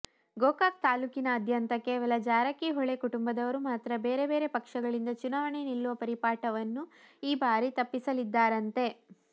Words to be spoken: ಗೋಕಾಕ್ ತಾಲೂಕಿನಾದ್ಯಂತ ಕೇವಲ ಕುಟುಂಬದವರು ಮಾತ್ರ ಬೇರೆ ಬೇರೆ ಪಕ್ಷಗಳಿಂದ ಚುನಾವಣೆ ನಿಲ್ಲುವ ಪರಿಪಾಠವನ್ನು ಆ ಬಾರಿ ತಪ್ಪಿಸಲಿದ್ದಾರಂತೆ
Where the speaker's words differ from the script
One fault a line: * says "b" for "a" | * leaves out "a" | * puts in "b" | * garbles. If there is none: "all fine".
* puts in "ಜಾರಕಿಹೊಳಿ"
* says "ಈ" for "ಆ"